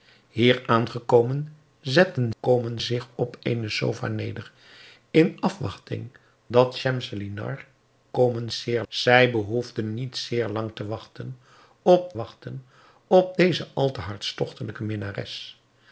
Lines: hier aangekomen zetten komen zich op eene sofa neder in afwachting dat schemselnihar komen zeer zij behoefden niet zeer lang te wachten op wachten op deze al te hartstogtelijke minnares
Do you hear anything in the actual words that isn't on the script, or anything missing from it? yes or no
no